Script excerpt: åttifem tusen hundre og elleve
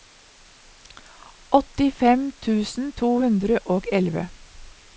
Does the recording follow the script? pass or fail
fail